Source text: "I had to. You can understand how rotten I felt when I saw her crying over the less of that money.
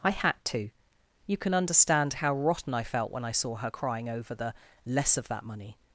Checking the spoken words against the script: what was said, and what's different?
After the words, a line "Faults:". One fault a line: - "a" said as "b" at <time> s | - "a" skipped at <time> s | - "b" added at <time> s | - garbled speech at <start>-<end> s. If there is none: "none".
"I had to. You can understand how rotten I felt when I saw her crying over the less of that money.
Faults:
none